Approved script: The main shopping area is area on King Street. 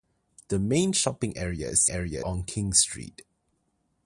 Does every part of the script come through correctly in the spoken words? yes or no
yes